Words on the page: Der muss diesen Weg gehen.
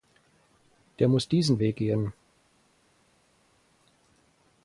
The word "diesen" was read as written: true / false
true